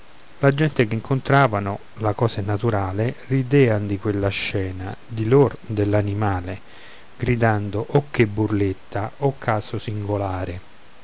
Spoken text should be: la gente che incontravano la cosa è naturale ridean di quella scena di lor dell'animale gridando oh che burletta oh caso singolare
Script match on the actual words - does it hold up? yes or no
yes